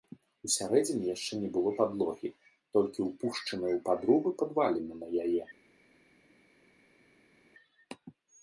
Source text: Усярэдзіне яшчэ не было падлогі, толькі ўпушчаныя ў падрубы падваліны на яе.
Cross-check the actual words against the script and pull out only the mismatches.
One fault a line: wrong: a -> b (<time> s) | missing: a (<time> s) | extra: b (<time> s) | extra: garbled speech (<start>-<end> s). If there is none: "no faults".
no faults